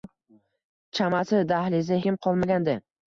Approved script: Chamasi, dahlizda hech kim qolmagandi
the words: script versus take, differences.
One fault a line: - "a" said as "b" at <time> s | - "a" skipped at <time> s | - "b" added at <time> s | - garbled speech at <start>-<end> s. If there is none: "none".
- "hech" skipped at 2.0 s